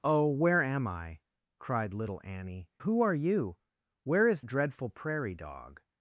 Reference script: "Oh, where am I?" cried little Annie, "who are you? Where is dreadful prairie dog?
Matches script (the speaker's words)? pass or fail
pass